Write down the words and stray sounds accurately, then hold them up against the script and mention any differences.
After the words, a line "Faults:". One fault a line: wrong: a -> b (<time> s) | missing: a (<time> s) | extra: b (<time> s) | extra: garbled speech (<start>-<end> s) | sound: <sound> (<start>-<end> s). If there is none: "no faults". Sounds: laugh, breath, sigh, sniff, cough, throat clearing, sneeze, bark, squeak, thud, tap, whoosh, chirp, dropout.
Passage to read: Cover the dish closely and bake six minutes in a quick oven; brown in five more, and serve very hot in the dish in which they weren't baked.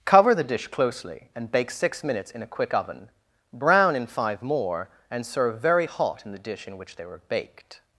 Cover the dish closely and bake six minutes in a quick oven; brown in five more, and serve very hot in the dish in which they were baked.
Faults:
wrong: weren't -> were (7.1 s)